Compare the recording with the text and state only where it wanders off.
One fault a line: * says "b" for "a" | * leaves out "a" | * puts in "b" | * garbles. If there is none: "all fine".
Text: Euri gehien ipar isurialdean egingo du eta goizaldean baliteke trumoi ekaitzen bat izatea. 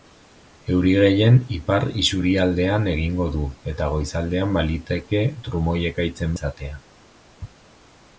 * leaves out "bat"